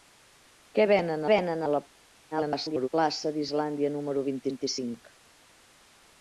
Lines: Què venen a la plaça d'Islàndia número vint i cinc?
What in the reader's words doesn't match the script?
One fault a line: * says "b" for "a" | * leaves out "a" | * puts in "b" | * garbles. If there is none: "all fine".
* puts in "venen"
* garbles
* puts in "vint"